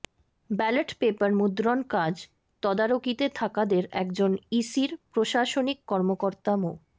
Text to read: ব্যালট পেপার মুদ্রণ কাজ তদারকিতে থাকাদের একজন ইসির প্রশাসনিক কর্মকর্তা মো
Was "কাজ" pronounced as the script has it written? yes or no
yes